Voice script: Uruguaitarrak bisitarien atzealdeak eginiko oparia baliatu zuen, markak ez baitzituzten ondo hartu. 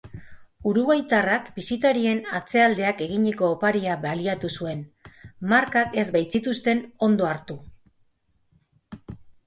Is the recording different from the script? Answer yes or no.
no